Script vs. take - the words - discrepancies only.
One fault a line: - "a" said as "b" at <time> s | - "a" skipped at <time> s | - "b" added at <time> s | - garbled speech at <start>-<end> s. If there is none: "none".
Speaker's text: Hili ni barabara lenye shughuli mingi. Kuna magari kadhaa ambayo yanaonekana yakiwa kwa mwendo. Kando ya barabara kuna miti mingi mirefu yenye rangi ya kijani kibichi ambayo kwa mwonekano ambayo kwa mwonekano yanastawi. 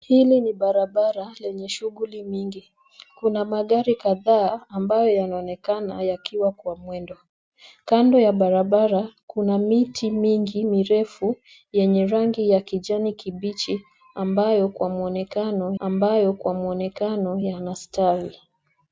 none